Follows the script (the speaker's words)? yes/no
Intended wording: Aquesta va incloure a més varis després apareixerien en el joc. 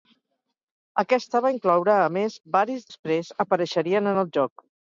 yes